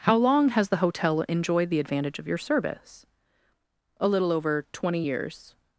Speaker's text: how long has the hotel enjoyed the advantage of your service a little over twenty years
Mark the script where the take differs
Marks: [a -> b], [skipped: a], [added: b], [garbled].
how long has the hotel enjoyed the advantage of your service a little over twenty years